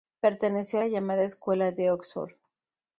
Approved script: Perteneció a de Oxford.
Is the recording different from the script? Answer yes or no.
yes